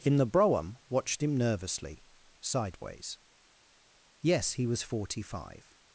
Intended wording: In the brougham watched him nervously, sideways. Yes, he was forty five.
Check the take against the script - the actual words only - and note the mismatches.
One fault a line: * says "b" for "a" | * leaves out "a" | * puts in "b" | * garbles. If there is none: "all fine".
all fine